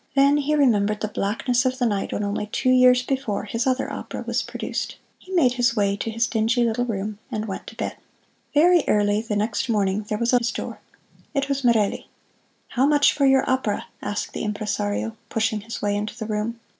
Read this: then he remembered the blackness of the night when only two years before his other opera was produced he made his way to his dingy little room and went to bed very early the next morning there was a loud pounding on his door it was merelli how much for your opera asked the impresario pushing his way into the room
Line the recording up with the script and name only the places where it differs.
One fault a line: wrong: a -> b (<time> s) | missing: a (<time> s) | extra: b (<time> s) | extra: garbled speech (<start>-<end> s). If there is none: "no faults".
missing: loud pounding on (10.4 s)